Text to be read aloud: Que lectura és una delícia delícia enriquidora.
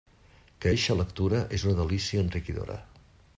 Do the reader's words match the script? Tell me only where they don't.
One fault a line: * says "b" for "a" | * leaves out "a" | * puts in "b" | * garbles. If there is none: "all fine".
* puts in "eixa"
* leaves out "delícia"